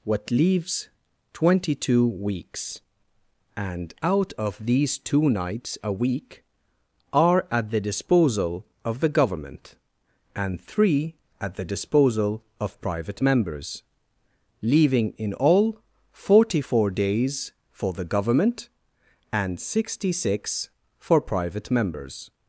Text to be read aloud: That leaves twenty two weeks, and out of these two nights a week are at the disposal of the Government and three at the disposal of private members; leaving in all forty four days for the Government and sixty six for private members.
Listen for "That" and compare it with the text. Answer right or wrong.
wrong